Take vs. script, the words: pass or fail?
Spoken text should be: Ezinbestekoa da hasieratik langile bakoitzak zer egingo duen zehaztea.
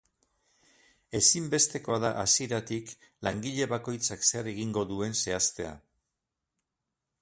pass